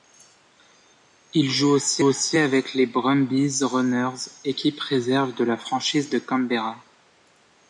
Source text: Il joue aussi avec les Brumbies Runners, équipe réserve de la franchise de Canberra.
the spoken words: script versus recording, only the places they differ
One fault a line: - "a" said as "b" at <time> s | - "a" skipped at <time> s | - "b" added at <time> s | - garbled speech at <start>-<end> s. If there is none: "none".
- "aussi" added at 2.0 s